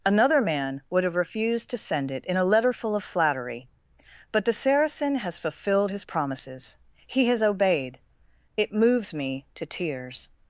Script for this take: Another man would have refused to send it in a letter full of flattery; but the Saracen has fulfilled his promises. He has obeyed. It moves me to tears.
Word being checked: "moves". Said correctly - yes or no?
yes